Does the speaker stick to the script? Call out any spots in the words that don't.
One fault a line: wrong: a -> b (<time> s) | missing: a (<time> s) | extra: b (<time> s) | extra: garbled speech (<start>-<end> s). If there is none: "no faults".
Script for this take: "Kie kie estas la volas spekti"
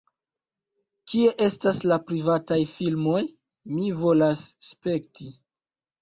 missing: kie (1.3 s)
extra: privataj filmoj Mi (2.1 s)